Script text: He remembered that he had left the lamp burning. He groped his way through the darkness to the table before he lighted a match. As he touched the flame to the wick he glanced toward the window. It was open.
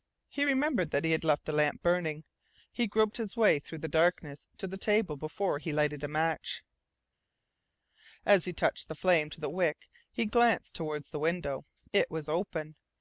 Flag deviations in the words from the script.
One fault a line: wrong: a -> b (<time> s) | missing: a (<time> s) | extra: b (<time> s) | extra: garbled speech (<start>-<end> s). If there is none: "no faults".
no faults